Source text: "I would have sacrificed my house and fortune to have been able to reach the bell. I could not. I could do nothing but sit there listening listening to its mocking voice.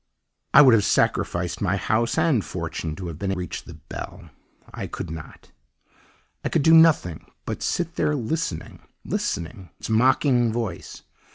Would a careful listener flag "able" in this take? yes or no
yes